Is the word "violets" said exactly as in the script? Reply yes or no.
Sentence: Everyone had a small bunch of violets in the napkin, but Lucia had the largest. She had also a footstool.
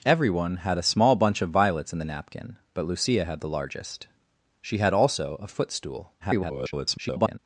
yes